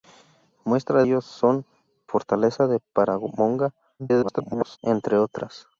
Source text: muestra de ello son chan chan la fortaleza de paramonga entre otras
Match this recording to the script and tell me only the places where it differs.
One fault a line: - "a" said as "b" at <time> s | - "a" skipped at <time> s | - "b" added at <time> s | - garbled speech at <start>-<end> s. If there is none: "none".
- "de" skipped at 1.0 s
- "chan chan la" skipped at 1.7 s
- garbled speech at 4.0-4.8 s